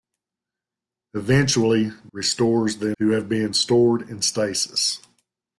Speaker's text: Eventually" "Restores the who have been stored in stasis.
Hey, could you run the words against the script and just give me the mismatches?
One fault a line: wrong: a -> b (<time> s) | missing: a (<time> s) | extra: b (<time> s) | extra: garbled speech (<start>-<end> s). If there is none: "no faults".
no faults